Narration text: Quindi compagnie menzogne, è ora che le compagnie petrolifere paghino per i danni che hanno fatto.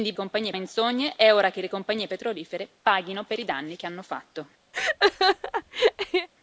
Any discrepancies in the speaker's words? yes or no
no